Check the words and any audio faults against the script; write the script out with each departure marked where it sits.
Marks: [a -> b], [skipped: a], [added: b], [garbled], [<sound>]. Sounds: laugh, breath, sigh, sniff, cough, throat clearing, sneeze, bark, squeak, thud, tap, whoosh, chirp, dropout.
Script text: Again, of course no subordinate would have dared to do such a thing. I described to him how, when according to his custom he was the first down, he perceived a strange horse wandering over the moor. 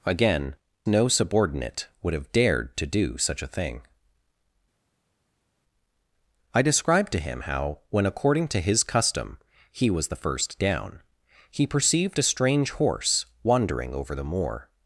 Again, [skipped: of course] no subordinate would have dared to do such a thing. I described to him how, when according to his custom he was the first down, he perceived a strange horse wandering over the moor.